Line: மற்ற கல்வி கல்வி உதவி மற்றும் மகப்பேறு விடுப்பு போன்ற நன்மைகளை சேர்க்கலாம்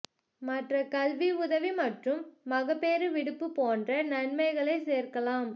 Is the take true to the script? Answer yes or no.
no